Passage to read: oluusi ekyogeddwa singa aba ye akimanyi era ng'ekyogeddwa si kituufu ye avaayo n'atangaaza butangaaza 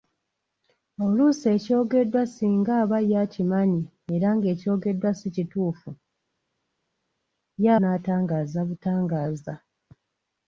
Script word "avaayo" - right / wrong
wrong